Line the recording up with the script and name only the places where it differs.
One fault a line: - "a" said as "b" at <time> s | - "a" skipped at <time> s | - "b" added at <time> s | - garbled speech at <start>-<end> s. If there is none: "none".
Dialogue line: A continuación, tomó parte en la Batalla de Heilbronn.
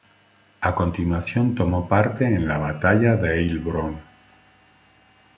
none